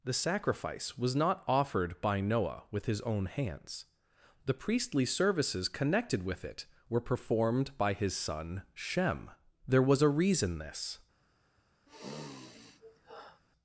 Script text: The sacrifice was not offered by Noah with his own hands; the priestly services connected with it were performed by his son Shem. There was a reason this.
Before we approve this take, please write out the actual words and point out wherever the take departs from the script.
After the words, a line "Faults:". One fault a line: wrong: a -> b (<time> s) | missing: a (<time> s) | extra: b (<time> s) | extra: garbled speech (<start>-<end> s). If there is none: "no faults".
The sacrifice was not offered by Noah with his own hands; the priestly services connected with it were performed by his son Shem. There was a reason this.
Faults:
no faults